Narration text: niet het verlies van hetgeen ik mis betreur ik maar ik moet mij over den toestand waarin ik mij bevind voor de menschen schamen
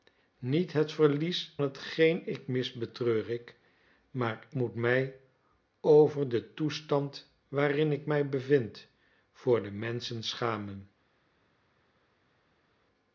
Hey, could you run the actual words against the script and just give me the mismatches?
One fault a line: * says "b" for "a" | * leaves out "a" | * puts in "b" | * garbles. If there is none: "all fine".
* leaves out "van"
* leaves out "ik"